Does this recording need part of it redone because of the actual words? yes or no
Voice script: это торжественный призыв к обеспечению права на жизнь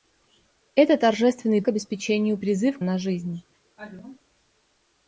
yes